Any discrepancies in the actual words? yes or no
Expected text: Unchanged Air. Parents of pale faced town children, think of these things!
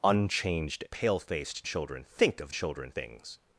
yes